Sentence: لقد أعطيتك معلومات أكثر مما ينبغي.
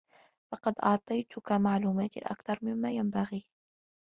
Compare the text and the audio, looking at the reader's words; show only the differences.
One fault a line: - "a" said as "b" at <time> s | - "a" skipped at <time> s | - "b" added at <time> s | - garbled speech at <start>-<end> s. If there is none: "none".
none